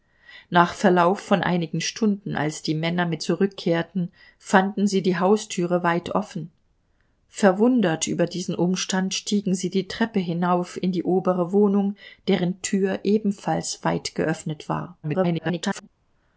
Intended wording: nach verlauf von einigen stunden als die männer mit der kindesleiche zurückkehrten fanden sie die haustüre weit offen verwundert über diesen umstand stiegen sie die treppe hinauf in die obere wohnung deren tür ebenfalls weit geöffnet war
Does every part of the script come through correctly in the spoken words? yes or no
no